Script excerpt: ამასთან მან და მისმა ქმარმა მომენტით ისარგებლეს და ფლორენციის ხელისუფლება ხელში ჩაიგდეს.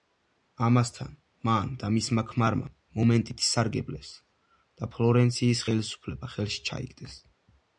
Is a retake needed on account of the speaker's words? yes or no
no